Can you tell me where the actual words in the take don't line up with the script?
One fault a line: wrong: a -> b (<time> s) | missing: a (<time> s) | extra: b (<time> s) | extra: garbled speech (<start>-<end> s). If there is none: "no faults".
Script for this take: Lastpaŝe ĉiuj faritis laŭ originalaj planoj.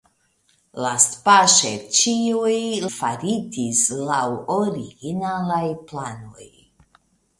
no faults